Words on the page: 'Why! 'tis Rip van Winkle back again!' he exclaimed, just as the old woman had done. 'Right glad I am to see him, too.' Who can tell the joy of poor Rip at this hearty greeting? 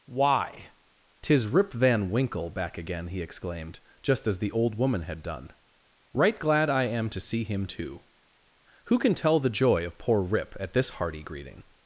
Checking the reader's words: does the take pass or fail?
pass